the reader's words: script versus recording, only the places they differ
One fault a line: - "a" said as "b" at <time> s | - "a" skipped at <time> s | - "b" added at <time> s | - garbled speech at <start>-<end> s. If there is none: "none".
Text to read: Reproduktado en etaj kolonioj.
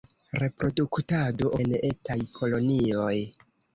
none